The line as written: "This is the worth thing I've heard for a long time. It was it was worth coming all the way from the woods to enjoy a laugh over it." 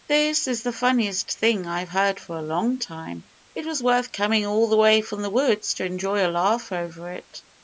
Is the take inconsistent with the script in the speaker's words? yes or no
yes